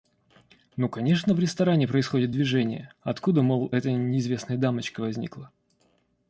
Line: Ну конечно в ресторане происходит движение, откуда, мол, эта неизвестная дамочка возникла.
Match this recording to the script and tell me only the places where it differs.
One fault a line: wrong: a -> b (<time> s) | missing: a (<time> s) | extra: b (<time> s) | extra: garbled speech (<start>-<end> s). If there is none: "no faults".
no faults